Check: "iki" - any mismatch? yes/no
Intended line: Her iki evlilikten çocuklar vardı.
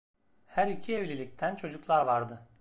no